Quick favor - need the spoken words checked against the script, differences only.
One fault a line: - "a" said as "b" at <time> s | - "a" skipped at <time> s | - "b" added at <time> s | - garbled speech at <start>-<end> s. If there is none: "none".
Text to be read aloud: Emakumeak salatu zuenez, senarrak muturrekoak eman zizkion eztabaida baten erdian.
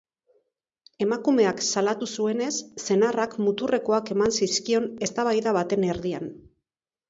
none